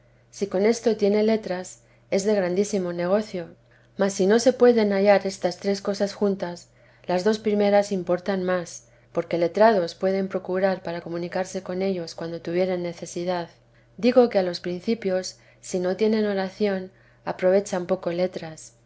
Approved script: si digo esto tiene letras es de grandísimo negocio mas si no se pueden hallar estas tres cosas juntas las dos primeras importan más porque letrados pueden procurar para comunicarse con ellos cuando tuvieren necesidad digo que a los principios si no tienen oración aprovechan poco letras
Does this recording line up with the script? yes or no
no